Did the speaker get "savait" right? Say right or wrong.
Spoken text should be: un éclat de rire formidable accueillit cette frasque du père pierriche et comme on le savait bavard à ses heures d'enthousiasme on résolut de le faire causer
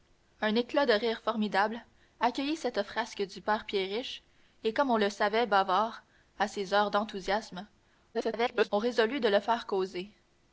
right